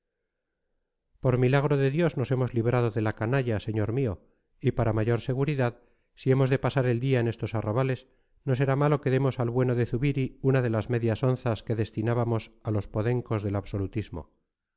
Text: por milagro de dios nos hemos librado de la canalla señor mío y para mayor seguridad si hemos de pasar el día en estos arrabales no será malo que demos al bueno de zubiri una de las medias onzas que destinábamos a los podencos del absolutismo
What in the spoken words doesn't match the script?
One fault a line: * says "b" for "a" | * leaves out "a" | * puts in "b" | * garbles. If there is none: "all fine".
all fine